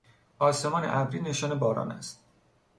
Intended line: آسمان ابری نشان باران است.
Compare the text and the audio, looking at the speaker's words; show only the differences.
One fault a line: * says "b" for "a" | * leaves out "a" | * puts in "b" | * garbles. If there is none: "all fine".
all fine